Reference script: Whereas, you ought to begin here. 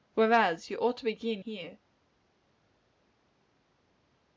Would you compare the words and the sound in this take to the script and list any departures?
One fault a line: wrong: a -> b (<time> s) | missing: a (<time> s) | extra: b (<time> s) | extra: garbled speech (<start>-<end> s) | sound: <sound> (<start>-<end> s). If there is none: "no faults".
no faults